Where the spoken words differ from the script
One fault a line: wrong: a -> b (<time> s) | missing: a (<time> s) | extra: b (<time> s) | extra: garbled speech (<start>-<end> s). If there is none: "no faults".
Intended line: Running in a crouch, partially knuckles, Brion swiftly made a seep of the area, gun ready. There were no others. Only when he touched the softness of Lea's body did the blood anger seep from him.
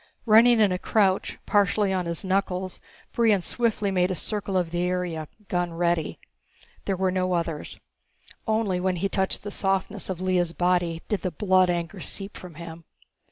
extra: on his (1.9 s)
wrong: seep -> circle (4.2 s)